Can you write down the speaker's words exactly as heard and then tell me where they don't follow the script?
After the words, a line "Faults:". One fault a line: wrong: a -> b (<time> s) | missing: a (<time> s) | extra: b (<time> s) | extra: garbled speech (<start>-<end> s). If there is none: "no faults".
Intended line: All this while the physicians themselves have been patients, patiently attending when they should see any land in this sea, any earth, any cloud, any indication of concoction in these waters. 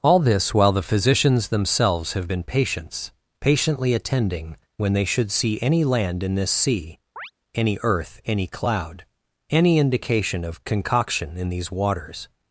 All this while the physicians themselves have been patients, patiently attending when they should see any land in this sea, any earth, any cloud, any indication of concoction in these waters.
Faults:
no faults